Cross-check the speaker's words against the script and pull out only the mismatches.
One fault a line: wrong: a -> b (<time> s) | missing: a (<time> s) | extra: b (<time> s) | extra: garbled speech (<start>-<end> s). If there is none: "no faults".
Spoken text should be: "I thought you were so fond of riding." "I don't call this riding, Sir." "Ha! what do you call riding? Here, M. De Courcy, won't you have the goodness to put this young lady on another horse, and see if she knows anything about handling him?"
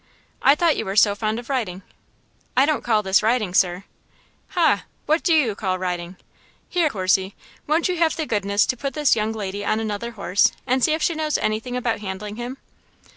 missing: M De (6.9 s)